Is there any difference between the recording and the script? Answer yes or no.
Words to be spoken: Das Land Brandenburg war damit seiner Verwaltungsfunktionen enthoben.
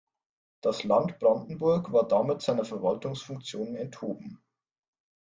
no